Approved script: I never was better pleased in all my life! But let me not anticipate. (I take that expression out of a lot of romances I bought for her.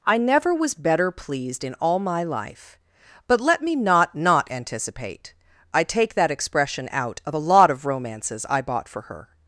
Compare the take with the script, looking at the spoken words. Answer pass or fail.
fail